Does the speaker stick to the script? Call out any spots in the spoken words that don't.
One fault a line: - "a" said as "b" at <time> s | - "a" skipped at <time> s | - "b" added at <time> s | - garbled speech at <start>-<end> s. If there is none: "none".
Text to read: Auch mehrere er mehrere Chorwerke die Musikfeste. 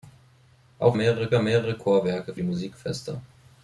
none